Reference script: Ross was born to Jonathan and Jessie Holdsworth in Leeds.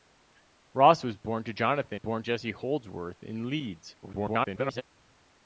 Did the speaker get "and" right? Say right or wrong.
wrong